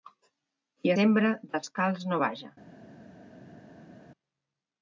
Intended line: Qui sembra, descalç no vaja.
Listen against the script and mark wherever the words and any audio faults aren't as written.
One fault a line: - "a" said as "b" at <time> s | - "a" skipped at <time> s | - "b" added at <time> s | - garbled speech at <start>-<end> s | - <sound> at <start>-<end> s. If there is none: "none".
none